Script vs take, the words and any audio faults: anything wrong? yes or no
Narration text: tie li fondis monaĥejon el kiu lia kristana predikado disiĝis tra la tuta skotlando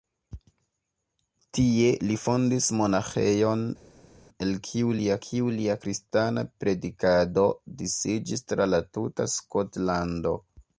yes